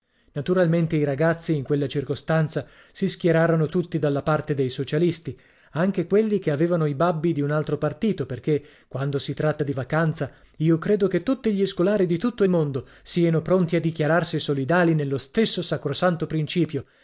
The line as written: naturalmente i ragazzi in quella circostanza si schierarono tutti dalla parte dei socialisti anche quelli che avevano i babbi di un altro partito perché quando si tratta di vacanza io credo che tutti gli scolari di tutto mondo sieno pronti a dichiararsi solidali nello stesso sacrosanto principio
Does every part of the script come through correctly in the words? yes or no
yes